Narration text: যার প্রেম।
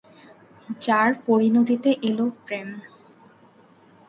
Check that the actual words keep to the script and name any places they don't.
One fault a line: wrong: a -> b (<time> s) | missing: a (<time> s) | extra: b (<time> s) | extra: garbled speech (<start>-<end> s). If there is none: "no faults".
extra: পরিণতিতে এল (1.3 s)